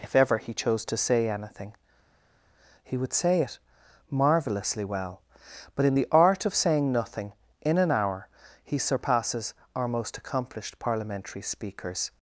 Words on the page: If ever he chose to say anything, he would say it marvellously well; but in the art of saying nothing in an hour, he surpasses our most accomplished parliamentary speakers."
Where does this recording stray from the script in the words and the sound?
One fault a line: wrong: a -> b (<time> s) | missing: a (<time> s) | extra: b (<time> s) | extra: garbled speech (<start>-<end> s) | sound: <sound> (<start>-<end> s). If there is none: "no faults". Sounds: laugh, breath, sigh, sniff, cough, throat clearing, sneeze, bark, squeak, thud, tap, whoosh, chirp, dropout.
no faults